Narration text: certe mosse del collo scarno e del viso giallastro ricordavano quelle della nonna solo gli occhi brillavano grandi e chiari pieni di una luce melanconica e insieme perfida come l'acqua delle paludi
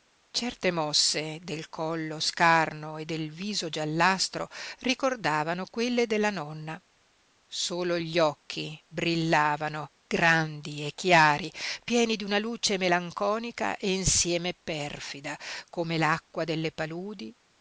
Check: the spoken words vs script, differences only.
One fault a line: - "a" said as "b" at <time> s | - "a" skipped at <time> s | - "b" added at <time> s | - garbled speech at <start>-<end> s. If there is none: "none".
none